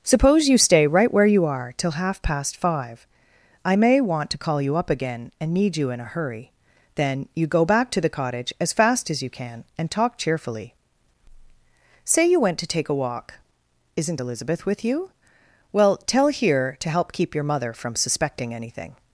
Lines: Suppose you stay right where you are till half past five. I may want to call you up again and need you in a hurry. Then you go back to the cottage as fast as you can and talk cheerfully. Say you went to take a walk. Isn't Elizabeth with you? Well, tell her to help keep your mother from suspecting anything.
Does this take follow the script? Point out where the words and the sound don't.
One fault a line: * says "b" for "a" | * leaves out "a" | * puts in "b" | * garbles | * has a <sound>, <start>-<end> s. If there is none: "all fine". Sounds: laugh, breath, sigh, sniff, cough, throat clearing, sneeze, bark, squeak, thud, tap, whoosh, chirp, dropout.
* says "here" for "her"